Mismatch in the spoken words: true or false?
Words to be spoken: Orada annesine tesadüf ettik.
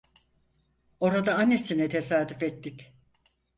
false